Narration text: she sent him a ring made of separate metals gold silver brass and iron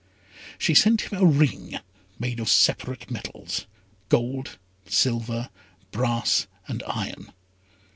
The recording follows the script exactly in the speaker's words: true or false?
true